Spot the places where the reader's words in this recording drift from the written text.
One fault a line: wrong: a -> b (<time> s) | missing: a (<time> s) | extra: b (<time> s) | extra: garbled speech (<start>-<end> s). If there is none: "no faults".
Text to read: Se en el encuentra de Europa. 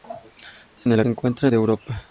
no faults